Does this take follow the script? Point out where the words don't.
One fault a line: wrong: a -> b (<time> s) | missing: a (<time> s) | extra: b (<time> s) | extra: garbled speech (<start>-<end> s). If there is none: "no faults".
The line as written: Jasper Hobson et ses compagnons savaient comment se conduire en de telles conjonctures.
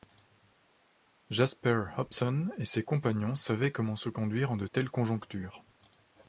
no faults